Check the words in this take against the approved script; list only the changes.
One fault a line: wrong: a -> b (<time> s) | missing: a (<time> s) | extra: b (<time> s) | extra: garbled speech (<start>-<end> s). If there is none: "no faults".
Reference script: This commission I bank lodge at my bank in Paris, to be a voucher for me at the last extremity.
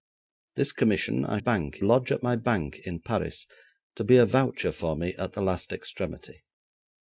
no faults